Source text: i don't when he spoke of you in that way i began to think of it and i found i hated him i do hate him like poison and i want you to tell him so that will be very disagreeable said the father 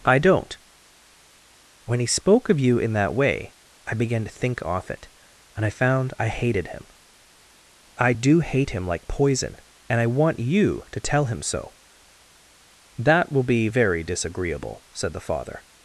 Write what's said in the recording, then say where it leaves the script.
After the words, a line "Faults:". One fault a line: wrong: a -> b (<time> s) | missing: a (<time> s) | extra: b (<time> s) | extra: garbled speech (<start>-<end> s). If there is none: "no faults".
i don't when he spoke of you in that way i began to think off it and i found i hated him i do hate him like poison and i want you to tell him so that will be very disagreeable said the father
Faults:
wrong: of -> off (4.6 s)